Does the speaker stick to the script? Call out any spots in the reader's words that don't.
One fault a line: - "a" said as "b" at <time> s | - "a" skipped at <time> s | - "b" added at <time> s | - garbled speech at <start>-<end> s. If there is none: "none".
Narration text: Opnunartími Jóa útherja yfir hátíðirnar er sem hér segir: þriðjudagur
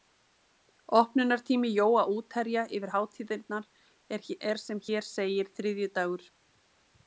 none